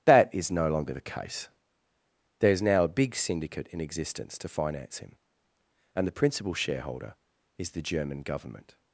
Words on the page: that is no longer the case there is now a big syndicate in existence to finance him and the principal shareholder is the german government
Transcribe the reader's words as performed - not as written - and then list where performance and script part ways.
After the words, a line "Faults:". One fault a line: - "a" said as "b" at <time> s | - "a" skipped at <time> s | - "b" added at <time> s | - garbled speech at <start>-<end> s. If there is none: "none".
that is no longer the case there is now a big syndicate in existence to finance him and the principal shareholder is the german government
Faults:
none